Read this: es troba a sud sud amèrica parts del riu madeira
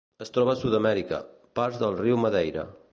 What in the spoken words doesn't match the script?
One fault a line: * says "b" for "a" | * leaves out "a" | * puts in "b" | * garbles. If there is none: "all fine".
* leaves out "sud"